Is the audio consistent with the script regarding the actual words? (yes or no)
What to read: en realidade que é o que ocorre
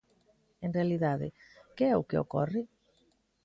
yes